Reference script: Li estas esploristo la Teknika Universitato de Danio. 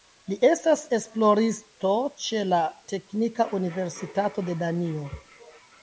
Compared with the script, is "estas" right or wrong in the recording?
right